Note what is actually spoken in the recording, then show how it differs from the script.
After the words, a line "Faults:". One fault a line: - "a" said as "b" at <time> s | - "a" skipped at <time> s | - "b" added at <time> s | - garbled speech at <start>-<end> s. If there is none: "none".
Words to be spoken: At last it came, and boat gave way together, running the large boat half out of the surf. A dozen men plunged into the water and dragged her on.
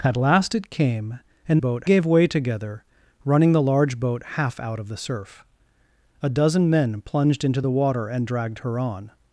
At last it came, and boat gave way together, running the large boat half out of the surf. A dozen men plunged into the water and dragged her on.
Faults:
none